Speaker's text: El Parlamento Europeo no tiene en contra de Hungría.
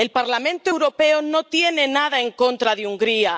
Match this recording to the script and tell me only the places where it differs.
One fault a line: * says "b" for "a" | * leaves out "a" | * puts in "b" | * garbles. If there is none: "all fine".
* puts in "nada"